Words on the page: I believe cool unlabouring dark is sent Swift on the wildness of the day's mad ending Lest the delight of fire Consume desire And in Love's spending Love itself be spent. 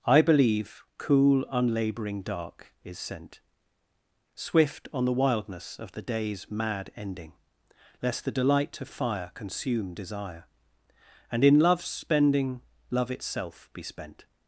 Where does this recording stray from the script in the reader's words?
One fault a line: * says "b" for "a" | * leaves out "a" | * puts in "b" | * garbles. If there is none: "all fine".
all fine